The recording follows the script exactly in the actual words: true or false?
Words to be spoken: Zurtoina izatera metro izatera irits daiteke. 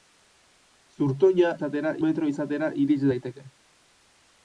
true